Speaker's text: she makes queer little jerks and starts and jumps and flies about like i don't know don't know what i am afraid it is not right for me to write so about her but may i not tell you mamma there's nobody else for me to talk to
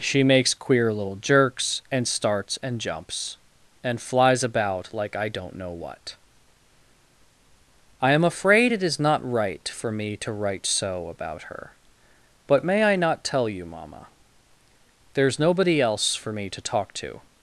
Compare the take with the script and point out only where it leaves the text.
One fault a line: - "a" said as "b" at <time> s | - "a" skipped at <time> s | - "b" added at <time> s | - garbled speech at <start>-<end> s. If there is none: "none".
- "don't know" skipped at 5.7 s